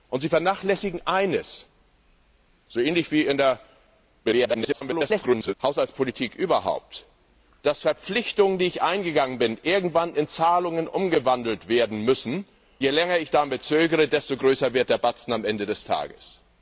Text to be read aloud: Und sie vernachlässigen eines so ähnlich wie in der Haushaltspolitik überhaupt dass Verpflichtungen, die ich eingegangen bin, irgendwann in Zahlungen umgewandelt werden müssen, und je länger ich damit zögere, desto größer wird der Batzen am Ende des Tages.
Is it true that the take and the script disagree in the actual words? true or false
true